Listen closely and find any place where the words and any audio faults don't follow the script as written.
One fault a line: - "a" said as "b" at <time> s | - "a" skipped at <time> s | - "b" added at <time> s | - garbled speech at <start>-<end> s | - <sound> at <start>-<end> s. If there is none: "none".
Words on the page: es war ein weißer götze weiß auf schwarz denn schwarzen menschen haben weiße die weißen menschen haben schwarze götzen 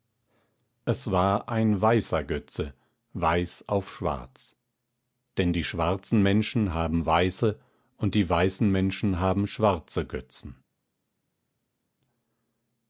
- "die" added at 5.5 s
- "und" added at 8.0 s